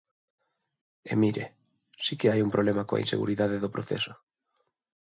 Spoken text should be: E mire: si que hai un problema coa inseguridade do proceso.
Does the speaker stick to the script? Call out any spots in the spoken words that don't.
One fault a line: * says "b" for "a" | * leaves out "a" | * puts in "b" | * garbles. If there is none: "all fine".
all fine